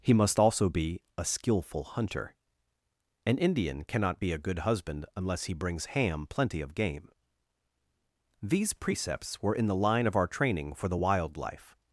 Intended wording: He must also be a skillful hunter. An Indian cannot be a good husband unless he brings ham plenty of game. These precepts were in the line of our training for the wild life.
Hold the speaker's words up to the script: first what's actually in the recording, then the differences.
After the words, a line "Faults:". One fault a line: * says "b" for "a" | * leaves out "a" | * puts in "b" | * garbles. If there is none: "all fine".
He must also be a skillful hunter. An Indian cannot be a good husband unless he brings ham plenty of game. These precepts were in the line of our training for the wild life.
Faults:
all fine